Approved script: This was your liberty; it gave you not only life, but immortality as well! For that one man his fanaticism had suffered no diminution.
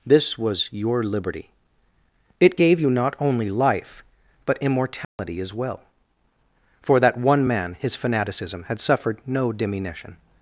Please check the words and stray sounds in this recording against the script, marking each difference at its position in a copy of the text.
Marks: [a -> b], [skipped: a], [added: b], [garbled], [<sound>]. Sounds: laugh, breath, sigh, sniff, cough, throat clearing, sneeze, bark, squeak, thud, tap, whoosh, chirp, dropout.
This was your liberty; it gave you not only life, but immortality [dropout] as well! For that one man his fanaticism had suffered no diminution.